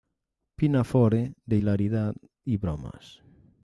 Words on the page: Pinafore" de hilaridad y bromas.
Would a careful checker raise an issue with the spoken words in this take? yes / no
no